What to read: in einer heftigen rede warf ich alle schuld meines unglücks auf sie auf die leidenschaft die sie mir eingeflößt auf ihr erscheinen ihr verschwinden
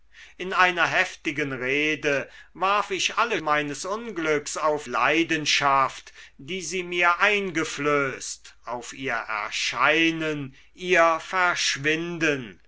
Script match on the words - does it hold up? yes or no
no